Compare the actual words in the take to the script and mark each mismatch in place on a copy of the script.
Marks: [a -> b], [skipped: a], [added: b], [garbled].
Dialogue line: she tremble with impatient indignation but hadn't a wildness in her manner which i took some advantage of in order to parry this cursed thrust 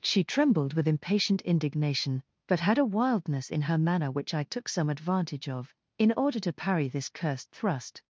she [tremble -> trembled] with impatient indignation but [hadn't -> had] a wildness in her manner which i took some advantage of in order to parry this cursed thrust